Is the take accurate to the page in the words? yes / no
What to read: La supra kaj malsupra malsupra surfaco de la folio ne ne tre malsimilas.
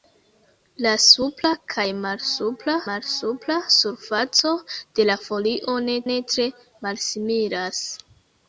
yes